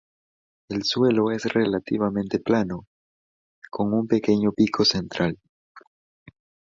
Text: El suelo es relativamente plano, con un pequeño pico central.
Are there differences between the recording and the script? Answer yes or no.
no